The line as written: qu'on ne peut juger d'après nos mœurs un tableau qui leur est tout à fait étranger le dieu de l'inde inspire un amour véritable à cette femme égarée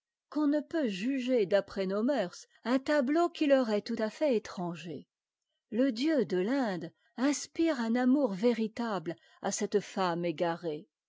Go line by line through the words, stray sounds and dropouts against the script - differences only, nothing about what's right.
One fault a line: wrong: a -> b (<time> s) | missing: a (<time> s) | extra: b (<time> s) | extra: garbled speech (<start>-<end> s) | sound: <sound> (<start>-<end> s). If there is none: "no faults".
no faults